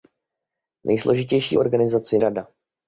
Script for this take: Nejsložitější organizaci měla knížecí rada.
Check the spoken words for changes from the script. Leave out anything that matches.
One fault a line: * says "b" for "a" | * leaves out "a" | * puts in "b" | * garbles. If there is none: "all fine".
* leaves out "měla knížecí"